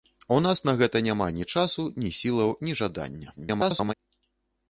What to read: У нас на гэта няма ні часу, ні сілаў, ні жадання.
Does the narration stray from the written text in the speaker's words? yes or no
yes